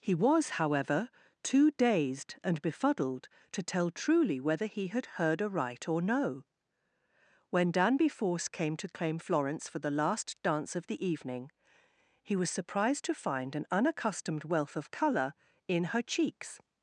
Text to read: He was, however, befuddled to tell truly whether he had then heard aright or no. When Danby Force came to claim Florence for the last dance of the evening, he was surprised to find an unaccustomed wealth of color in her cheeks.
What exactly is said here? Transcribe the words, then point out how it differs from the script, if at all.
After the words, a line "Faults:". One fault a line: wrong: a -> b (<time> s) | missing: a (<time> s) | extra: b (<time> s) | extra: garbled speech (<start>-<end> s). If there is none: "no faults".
He was, however, too dazed and befuddled to tell truly whether he had heard aright or no. When Danby Force came to claim Florence for the last dance of the evening, he was surprised to find an unaccustomed wealth of color in her cheeks.
Faults:
extra: too dazed and (1.4 s)
missing: then (5.2 s)